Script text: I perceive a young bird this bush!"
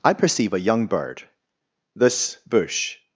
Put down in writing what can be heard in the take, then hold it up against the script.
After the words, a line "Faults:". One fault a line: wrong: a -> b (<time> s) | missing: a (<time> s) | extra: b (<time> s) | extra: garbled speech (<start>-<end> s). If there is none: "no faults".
I perceive a young bird this bush!"
Faults:
no faults